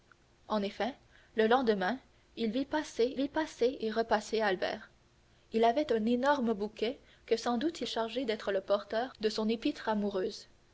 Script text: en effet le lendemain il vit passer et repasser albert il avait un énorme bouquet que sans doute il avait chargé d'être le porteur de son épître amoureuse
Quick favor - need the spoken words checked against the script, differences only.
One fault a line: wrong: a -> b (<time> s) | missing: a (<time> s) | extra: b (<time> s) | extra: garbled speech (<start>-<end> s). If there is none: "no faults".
extra: vit passer (3.1 s)
missing: avait (7.9 s)